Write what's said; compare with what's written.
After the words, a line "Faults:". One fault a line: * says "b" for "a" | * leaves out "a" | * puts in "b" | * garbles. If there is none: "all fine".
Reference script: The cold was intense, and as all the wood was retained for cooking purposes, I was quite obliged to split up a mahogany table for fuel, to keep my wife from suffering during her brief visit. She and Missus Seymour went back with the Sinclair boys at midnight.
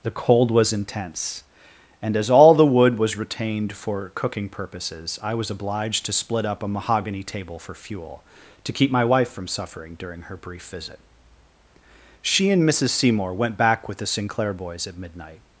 The cold was intense, and as all the wood was retained for cooking purposes, I was obliged to split up a mahogany table for fuel, to keep my wife from suffering during her brief visit. She and Missus Seymour went back with the Sinclair boys at midnight.
Faults:
* leaves out "quite"